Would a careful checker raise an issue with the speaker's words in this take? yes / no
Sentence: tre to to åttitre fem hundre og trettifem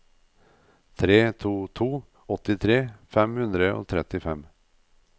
no